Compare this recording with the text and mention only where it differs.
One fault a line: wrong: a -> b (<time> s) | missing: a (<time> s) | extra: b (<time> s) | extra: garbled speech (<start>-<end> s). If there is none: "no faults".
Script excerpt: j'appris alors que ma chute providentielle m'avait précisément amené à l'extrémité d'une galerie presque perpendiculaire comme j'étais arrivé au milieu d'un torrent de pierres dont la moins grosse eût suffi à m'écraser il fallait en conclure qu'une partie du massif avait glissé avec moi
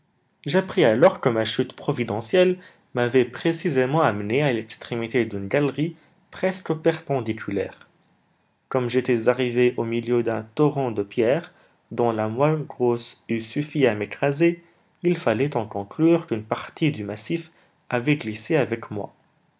no faults